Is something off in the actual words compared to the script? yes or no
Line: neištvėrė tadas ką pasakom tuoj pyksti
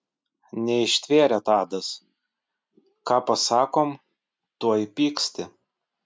no